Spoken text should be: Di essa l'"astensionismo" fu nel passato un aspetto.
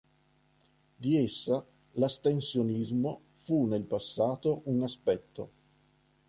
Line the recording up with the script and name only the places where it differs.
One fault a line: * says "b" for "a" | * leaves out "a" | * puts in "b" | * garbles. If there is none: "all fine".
all fine